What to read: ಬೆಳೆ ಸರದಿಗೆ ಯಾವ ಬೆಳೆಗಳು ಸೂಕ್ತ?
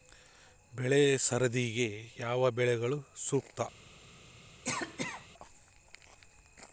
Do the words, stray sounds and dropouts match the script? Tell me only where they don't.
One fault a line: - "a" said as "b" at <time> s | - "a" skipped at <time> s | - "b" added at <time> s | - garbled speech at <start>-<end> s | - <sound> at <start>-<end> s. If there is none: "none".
- cough at 4.6-5.3 s